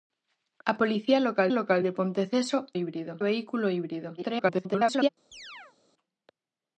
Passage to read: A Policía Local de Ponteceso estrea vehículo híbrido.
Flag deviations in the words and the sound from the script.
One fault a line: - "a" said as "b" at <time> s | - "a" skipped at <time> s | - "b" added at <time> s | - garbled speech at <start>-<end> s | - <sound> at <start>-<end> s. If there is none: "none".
- "Local" added at 1.5 s
- "estrea" said as "híbrido" at 2.7 s
- garbled speech at 4.2-5.1 s
- chirp at 5.3-5.8 s